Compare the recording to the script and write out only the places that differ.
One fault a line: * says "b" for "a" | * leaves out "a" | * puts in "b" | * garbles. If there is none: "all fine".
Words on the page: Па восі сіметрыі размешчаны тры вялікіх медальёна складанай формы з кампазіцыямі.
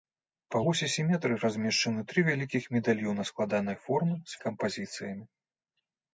all fine